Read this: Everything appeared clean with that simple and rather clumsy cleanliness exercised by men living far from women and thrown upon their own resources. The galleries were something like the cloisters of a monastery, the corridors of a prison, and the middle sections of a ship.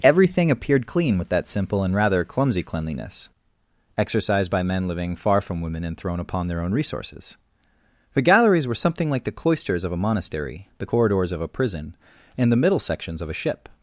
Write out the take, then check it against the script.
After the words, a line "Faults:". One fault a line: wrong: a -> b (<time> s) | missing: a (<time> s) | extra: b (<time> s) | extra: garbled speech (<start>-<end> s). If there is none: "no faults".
Everything appeared clean with that simple and rather clumsy cleanliness exercised by men living far from women and thrown upon their own resources. The galleries were something like the cloisters of a monastery, the corridors of a prison, and the middle sections of a ship.
Faults:
no faults